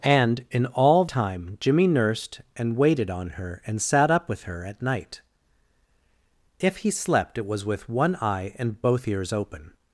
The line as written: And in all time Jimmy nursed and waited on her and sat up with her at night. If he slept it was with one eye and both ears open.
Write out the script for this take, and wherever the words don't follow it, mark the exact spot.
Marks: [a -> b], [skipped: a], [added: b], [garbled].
And in all time Jimmy nursed and waited on her and sat up with her at night. If he slept it was with one eye and both ears open.